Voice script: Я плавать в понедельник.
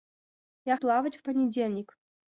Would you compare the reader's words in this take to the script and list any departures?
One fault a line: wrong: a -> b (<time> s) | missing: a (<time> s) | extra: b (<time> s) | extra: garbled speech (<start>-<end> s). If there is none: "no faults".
no faults